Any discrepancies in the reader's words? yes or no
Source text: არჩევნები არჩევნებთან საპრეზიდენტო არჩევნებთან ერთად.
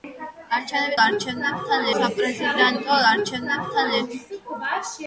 no